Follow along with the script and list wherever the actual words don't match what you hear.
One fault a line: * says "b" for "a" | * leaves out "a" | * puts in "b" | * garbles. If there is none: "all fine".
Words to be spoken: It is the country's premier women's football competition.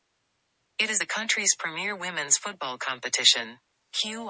all fine